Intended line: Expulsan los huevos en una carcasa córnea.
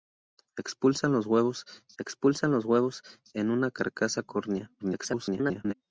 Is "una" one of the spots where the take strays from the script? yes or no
no